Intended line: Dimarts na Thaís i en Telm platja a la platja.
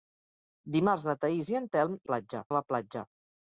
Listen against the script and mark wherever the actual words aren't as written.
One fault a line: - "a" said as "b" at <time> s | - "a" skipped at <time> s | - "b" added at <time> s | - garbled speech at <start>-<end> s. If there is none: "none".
none